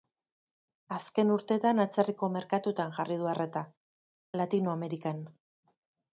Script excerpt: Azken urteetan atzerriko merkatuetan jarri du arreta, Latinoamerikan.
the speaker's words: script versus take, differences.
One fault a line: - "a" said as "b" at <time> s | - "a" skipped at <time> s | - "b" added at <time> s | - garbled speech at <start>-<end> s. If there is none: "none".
none